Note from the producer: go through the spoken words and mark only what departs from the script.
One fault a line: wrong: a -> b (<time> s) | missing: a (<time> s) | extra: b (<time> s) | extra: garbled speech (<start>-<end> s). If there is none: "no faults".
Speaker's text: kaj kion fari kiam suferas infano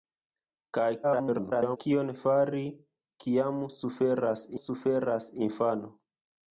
extra: garbled speech (1.0-1.8 s)
extra: suferas (4.6 s)